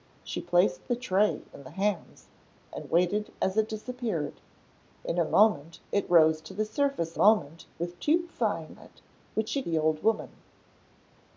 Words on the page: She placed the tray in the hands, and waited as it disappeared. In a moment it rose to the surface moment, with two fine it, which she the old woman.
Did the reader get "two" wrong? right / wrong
right